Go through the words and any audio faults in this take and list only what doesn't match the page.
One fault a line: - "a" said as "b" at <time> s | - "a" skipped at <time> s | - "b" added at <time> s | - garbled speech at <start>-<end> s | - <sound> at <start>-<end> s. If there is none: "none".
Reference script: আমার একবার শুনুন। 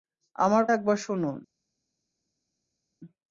none